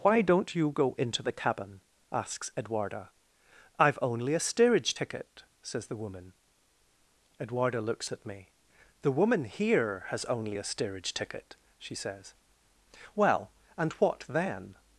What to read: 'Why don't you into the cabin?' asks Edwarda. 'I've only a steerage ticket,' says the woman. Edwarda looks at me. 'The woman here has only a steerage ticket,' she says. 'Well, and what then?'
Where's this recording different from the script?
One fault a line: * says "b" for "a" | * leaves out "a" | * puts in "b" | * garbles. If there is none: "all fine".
* puts in "go"